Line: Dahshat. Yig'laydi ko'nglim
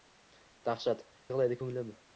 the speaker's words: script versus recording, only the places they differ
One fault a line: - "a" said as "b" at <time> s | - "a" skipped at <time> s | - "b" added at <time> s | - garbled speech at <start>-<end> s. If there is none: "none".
none